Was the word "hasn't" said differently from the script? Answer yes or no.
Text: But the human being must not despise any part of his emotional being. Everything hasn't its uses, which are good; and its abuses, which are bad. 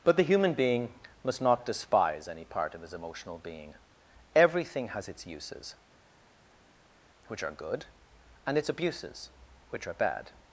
yes